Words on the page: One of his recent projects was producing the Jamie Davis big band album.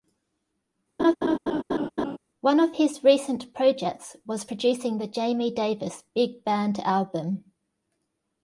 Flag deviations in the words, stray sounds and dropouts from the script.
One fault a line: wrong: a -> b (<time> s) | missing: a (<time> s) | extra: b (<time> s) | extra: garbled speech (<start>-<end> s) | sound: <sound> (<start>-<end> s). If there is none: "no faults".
sound: laugh (1.0-2.2 s)